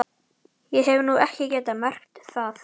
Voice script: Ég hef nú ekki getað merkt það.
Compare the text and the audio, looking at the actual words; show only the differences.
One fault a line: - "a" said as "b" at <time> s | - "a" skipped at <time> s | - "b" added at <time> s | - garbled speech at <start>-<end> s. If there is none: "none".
none